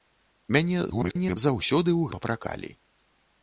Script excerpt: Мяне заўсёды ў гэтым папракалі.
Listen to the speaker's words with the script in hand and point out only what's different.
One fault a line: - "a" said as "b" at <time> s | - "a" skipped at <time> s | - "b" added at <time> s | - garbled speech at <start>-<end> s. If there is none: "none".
- garbled speech at 0.9-1.4 s
- "гэтым" skipped at 2.1 s